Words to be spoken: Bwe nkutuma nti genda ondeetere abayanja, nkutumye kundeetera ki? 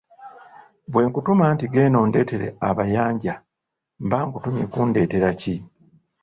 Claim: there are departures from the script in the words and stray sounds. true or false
true